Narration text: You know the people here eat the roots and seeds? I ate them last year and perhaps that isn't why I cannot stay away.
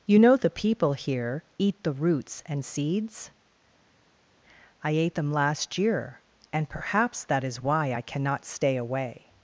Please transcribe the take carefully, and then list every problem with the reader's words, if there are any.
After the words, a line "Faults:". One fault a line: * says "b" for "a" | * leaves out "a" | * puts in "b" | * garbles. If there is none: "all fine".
You know the people here eat the roots and seeds? I ate them last year and perhaps that is why I cannot stay away.
Faults:
* says "is" for "isn't"